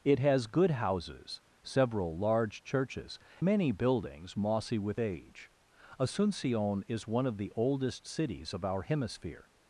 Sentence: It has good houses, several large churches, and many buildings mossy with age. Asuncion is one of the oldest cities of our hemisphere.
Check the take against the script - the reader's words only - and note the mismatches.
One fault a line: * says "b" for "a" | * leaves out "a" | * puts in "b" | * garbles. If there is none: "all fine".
* leaves out "and"